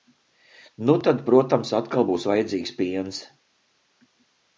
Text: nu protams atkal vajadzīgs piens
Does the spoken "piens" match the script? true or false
true